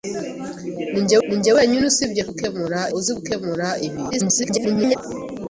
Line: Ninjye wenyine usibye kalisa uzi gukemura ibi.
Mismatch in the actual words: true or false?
true